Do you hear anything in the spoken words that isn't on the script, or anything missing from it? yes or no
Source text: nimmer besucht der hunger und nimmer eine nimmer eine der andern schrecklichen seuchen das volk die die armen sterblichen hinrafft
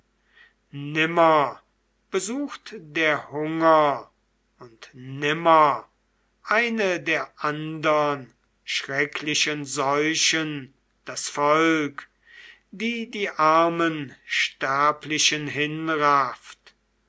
yes